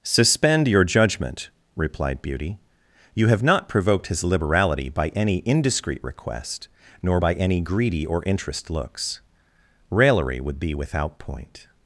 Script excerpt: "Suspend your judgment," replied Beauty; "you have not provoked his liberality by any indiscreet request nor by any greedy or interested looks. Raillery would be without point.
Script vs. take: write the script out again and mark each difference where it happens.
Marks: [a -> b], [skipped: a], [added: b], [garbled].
"Suspend your judgment," replied Beauty; "you have not provoked his liberality by any indiscreet request nor by any greedy or [interested -> interest] looks. Raillery would be without point.